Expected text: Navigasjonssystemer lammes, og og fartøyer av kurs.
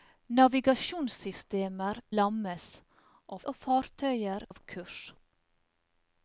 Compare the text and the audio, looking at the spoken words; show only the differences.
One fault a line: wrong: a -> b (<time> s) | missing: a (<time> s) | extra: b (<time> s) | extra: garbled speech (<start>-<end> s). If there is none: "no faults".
no faults